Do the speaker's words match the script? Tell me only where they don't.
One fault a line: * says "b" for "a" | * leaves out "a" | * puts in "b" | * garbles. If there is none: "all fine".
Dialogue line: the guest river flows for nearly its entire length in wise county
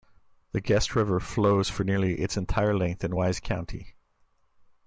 all fine